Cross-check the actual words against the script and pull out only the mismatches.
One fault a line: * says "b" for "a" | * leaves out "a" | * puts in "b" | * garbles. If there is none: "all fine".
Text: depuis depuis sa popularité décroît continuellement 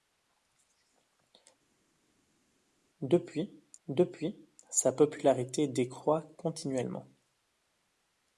all fine